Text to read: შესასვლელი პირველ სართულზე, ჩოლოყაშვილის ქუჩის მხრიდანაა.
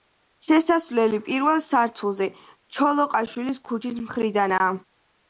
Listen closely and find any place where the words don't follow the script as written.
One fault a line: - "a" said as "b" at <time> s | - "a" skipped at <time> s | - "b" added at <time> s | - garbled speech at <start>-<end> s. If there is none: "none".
none